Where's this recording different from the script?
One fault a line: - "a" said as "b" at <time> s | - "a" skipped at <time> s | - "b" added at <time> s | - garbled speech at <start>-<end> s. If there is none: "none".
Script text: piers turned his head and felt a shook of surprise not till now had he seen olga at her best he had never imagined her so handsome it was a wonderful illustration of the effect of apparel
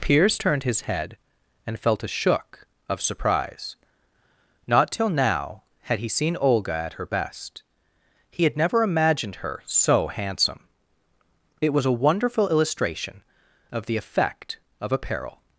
none